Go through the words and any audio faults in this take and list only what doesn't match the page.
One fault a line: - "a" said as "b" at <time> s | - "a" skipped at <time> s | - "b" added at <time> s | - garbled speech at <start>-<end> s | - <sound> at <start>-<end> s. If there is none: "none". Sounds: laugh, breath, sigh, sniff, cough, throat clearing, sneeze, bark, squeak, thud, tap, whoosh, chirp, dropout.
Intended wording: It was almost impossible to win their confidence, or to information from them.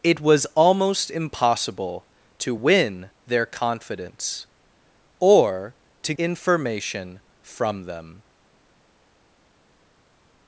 none